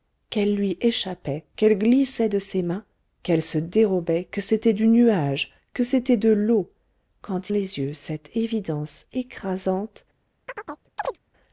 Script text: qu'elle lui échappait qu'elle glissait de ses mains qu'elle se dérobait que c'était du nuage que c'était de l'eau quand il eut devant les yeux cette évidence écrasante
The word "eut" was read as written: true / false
false